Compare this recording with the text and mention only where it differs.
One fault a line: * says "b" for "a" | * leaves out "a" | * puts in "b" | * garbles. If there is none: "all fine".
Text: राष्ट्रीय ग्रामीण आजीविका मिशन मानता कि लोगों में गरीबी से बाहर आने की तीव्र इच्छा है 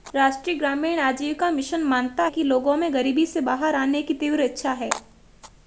all fine